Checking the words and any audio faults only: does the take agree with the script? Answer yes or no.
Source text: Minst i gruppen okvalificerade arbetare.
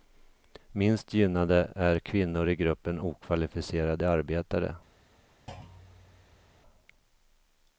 no